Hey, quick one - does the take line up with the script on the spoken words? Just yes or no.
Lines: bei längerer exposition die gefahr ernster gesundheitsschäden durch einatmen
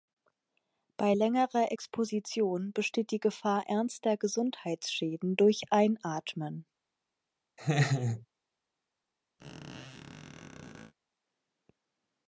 no